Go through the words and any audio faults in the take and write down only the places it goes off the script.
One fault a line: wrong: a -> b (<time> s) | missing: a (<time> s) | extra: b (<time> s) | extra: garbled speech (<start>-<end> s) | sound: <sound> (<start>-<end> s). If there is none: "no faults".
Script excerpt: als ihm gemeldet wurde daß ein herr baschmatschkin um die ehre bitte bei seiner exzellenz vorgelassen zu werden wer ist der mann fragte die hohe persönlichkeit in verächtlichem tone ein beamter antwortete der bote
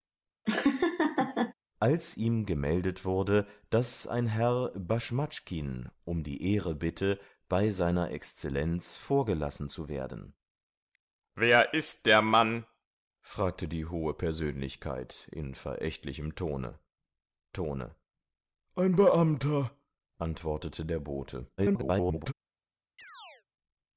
sound: laugh (0.5-1.5 s)
extra: tone (17.5 s)
extra: garbled speech (21.6-22.3 s)
sound: chirp (23.0-23.4 s)